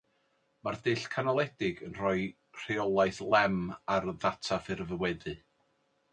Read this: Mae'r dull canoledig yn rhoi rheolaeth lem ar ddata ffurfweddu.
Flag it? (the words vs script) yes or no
no